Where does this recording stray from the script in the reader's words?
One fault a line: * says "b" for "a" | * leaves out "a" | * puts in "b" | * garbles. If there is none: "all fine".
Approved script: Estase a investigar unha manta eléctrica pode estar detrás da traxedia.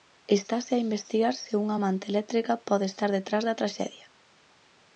* puts in "se"